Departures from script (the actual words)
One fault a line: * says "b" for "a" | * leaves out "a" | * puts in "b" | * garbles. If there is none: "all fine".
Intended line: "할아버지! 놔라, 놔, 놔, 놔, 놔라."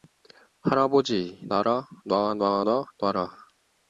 all fine